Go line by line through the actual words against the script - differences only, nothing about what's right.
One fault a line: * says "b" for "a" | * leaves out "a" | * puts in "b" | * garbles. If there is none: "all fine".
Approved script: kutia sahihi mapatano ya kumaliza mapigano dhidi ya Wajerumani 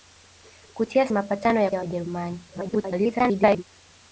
* leaves out "sahihi"
* leaves out "kumaliza mapigano dhidi"
* garbles